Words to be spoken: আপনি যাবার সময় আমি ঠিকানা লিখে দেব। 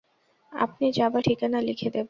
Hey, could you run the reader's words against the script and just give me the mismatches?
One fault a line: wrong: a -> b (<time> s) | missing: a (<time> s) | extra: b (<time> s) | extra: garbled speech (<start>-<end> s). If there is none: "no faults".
missing: সময় আমি (1.2 s)